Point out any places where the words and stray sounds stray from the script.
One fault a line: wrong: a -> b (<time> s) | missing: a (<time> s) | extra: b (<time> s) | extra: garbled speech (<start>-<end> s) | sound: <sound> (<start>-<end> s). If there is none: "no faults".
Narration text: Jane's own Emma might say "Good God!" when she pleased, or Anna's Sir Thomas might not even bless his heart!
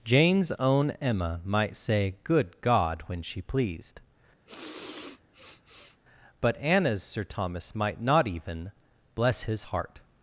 sound: sniff (4.5-6.0 s)
wrong: or -> but (6.4 s)